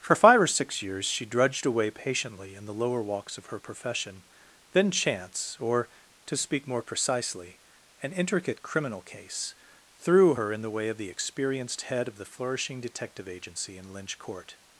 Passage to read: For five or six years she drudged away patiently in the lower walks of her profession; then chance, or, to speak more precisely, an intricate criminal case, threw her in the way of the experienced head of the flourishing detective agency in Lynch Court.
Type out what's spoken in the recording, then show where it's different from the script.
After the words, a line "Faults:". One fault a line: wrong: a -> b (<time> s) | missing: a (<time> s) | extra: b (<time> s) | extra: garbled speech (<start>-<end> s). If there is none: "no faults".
For five or six years she drudged away patiently in the lower walks of her profession; then chance, or, to speak more precisely, an intricate criminal case, threw her in the way of the experienced head of the flourishing detective agency in Lynch Court.
Faults:
no faults